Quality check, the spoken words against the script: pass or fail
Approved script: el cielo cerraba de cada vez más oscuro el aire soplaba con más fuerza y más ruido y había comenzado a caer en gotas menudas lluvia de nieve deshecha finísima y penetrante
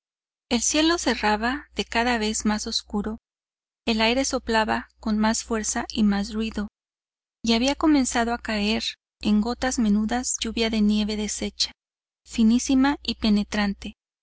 pass